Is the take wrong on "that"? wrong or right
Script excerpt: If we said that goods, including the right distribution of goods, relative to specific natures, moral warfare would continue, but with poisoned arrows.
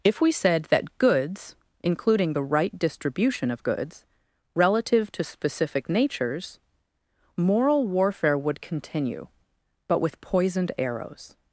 right